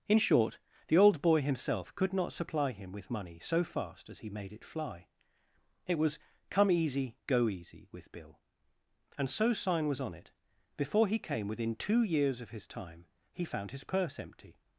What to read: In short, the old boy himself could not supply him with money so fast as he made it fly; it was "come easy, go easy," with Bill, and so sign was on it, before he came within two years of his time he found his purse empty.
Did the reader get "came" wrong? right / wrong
right